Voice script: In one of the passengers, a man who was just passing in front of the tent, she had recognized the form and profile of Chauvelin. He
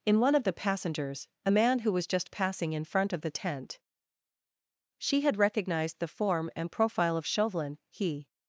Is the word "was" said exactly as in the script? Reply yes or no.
yes